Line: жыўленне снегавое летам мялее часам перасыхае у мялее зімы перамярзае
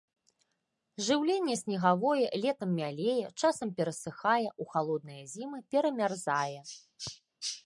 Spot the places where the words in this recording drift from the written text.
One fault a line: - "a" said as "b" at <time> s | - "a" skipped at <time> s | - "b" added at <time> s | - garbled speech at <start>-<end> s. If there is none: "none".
- "мялее" said as "халодныя" at 4.8 s